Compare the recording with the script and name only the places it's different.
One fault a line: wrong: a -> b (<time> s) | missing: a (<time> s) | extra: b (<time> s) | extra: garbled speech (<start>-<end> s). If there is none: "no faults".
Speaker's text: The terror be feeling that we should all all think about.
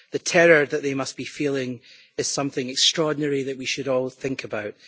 extra: that they must (0.7 s)
extra: is something extraordinary (2.2 s)
missing: all (4.1 s)